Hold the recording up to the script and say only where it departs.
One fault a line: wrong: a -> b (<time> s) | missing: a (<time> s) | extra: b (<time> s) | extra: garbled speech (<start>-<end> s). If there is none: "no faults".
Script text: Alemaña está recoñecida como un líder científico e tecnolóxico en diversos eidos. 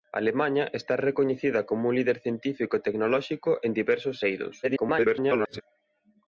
extra: garbled speech (4.6-5.6 s)